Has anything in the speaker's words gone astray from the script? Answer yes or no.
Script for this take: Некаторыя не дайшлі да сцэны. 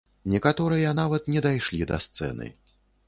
yes